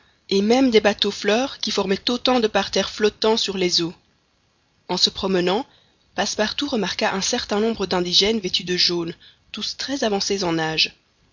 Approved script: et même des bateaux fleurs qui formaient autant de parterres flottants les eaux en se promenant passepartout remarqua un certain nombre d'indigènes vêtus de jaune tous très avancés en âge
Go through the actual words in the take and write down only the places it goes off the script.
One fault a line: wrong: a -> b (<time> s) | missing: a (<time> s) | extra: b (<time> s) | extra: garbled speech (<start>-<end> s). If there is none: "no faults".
extra: sur (3.4 s)